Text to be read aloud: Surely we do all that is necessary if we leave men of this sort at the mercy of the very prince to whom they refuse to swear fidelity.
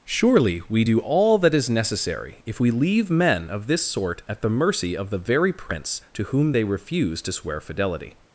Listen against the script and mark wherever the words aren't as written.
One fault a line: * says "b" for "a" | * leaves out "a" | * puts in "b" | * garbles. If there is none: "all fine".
all fine